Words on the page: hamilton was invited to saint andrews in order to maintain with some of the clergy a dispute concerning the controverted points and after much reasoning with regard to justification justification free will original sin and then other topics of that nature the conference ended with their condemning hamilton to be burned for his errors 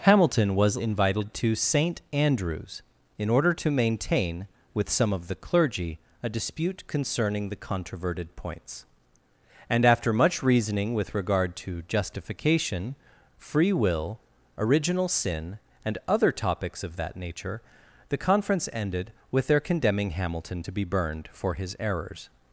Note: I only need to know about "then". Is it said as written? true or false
false